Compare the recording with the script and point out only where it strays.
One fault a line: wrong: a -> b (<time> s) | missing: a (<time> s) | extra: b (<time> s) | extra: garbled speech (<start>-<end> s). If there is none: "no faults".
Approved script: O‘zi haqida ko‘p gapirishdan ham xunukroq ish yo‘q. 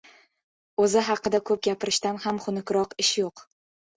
no faults